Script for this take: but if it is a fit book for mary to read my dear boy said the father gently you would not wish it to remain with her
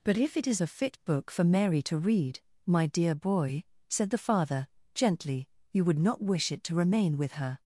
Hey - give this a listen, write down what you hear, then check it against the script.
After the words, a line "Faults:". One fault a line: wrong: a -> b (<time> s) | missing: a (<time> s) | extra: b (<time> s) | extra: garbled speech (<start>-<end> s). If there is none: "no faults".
but if it is a fit book for mary to read my dear boy said the father gently you would not wish it to remain with her
Faults:
no faults